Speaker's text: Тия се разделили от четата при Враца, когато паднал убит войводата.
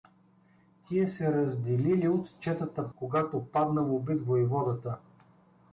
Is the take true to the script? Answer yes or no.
no